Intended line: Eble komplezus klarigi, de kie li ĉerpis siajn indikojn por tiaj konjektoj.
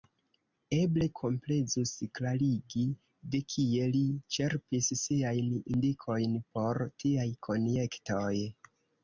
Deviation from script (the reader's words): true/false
false